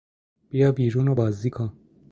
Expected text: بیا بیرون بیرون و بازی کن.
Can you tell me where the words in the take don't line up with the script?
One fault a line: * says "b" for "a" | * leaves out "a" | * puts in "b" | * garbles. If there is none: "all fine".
* leaves out "بیرون"